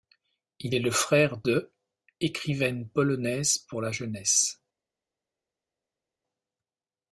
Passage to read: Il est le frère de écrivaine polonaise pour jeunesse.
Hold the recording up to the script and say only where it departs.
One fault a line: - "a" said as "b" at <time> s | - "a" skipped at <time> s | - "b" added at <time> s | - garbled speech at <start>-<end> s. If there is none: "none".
- "la" added at 3.8 s